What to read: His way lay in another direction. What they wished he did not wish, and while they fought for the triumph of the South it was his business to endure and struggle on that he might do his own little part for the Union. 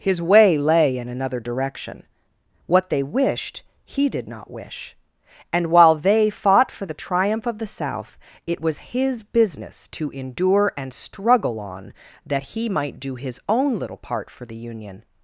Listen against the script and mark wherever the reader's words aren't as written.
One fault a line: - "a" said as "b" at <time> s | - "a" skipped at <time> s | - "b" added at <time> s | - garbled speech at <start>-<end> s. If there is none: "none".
none